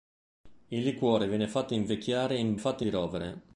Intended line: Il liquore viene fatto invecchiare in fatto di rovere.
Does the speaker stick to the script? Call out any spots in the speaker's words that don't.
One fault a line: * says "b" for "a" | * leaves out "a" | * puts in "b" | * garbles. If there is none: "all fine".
all fine